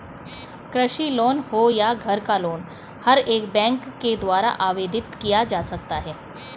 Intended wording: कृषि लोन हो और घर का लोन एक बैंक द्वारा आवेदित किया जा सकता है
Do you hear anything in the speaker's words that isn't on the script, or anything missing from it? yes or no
yes